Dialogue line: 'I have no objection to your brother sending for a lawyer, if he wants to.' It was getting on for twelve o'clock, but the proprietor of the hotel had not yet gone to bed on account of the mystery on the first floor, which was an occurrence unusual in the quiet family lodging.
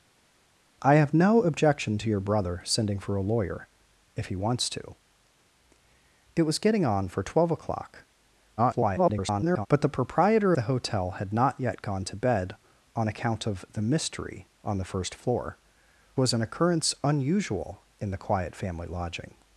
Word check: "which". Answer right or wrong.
wrong